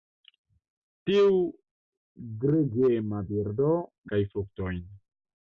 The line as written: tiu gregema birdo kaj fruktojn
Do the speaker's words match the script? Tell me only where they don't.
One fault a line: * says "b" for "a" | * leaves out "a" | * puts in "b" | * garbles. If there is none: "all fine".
all fine